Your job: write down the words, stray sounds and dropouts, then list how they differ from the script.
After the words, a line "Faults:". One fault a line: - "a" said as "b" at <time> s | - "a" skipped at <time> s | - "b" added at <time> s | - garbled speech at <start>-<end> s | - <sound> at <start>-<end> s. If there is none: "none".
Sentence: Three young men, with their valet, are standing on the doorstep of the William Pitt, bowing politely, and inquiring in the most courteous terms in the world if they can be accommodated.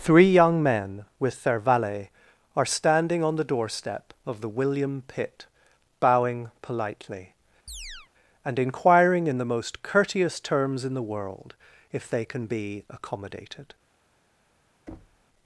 Three young men, with their valet, are standing on the doorstep of the William Pitt, bowing politely, and inquiring in the most courteous terms in the world if they can be accommodated.
Faults:
- chirp at 7.7-8.1 s
- thud at 14.9-15.2 s